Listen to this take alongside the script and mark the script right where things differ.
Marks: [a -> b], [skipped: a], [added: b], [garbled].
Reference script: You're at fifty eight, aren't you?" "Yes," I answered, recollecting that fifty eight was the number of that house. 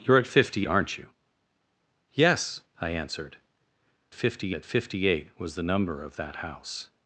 You're at fifty [skipped: eight,] aren't you?" "Yes," I answered, [recollecting -> fifty] that fifty eight was the number of that house.